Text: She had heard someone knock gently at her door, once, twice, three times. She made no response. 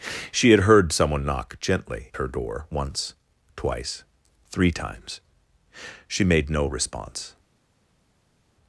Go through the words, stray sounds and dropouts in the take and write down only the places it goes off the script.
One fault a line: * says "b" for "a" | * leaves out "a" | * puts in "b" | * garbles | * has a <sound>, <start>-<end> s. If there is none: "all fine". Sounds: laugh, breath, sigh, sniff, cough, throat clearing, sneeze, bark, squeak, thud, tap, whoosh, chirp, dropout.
* leaves out "at"